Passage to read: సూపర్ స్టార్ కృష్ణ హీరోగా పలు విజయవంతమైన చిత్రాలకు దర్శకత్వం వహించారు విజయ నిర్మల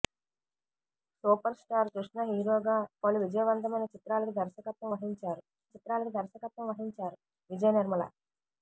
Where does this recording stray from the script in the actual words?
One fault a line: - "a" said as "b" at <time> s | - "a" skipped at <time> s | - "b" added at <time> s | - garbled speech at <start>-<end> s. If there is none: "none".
- "చిత్రాలకు దర్శకత్వం వహించారు" added at 5.7 s